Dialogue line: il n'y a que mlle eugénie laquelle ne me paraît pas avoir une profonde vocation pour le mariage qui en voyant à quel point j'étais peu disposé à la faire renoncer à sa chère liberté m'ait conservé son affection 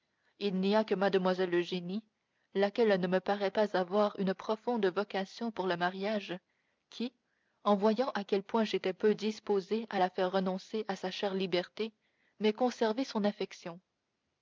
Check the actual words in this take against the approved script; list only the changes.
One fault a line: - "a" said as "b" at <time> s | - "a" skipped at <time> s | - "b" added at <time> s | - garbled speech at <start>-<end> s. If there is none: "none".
none